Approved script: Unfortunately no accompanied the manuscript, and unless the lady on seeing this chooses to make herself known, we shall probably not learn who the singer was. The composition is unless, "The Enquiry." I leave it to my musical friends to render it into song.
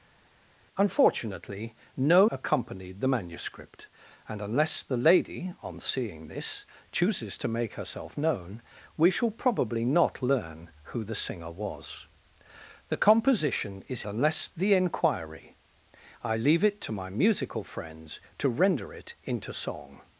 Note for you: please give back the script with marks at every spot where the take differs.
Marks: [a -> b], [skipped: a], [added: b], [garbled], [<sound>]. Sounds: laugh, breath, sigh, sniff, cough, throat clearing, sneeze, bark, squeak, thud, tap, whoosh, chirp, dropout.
Unfortunately no accompanied the manuscript, and unless the lady on seeing this chooses to make herself known, we shall probably not learn who the singer was. The composition is unless, "The Enquiry." I leave it to my musical friends to render it into song.